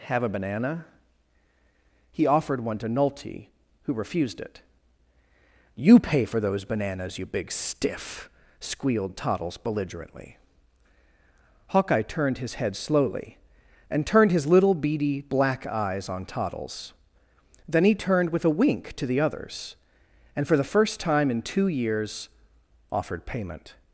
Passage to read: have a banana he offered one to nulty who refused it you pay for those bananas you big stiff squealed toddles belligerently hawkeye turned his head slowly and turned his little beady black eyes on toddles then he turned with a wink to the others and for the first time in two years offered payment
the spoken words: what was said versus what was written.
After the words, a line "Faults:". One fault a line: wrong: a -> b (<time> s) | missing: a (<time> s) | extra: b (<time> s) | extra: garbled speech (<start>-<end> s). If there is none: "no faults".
have a banana he offered one to nulty who refused it you pay for those bananas you big stiff squealed toddles belligerently hawkeye turned his head slowly and turned his little beady black eyes on toddles then he turned with a wink to the others and for the first time in two years offered payment
Faults:
no faults